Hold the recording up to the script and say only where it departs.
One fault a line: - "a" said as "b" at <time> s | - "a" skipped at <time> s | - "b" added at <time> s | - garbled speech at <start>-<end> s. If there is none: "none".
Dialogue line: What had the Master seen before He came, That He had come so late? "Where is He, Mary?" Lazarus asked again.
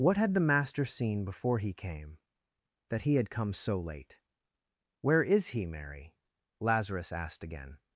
none